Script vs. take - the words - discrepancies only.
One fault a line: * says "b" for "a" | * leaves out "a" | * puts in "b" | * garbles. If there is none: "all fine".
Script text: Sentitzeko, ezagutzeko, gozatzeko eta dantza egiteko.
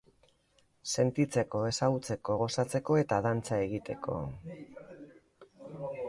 all fine